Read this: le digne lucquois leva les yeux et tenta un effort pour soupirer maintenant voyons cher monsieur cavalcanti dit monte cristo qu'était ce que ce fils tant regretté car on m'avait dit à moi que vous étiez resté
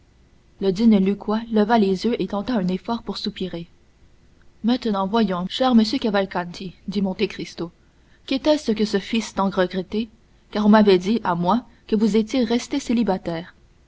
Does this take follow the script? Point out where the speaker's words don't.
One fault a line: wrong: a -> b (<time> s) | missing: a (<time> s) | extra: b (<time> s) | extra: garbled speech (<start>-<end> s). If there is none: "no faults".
no faults